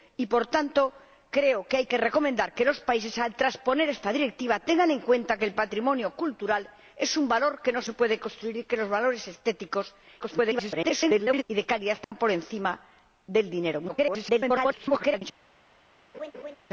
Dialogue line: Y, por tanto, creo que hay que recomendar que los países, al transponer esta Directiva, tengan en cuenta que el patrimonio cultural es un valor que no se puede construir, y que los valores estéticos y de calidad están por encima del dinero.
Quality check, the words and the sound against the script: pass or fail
fail